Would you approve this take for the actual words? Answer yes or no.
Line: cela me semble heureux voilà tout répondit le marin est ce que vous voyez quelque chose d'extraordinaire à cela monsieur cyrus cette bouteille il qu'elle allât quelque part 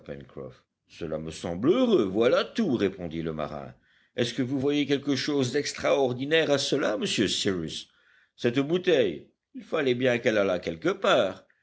no